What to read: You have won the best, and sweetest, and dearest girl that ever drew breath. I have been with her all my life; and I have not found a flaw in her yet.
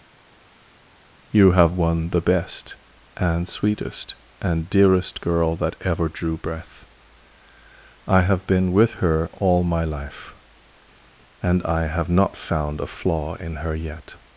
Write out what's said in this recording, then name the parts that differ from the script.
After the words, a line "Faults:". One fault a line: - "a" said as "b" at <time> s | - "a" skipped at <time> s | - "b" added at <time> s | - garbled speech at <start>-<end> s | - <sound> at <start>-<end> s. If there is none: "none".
You have won the best, and sweetest, and dearest girl that ever drew breath. I have been with her all my life; and I have not found a flaw in her yet.
Faults:
none